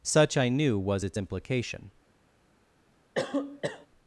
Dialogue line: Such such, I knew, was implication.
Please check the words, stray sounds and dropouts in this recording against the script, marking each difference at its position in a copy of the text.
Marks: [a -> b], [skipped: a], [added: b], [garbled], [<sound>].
Such [skipped: such,] I knew, was [added: its] implication. [cough]